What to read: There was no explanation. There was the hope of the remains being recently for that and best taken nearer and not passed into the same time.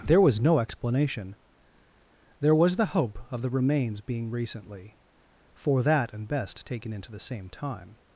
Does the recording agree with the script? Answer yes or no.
no